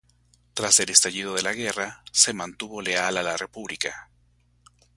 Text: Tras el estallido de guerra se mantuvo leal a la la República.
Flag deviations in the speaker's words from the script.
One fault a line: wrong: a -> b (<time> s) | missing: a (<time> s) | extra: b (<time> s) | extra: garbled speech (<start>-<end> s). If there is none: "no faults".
extra: la (1.4 s)
missing: la (3.4 s)